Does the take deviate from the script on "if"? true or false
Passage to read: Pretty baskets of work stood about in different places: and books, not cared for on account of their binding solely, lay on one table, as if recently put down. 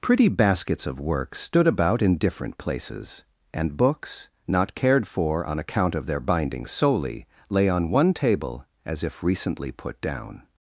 false